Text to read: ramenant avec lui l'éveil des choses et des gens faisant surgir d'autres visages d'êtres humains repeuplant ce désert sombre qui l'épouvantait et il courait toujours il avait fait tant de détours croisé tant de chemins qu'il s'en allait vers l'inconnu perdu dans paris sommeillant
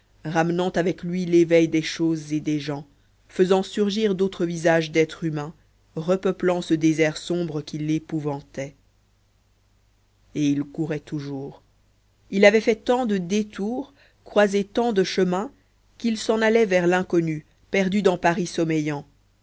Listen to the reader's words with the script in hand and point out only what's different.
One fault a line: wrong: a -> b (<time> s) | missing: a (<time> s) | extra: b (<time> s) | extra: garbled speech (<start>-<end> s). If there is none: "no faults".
no faults